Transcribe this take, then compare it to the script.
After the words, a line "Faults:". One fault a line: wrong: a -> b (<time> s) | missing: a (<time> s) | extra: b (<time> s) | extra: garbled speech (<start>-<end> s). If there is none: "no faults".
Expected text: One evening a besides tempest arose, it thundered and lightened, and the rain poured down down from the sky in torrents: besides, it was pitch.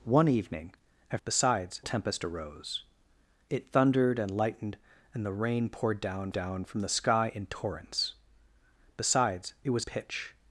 One evening a besides tempest arose, it thundered and lightened, and the rain poured down down from the sky in torrents: besides, it was pitch.
Faults:
no faults